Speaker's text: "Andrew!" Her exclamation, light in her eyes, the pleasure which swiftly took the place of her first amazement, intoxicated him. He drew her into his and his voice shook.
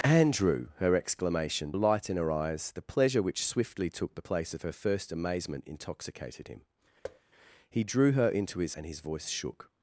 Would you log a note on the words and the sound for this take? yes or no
yes